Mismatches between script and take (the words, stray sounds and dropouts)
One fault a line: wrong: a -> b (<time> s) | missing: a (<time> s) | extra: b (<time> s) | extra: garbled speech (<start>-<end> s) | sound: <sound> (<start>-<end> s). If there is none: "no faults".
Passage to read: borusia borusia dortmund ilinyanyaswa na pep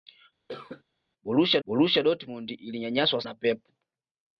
sound: cough (0.5-0.8 s)